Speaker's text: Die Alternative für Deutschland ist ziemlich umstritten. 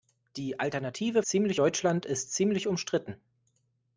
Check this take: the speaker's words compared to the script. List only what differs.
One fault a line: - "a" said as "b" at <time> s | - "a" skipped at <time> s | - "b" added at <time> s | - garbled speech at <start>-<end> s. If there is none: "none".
- "für" said as "ziemlich" at 1.3 s